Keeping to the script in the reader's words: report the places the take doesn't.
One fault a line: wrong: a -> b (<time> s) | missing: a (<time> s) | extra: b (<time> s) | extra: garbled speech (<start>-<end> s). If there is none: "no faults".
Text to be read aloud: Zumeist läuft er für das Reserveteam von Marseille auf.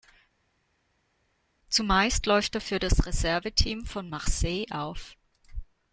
no faults